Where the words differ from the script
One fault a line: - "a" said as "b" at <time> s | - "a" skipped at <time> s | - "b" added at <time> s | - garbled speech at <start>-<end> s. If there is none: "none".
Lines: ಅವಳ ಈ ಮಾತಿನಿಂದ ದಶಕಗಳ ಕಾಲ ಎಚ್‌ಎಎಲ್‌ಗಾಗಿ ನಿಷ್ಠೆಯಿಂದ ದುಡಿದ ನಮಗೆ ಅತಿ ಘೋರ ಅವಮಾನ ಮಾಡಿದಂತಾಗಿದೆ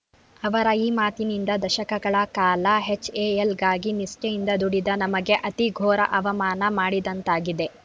- "ಅವಳ" said as "ಅವರ" at 0.4 s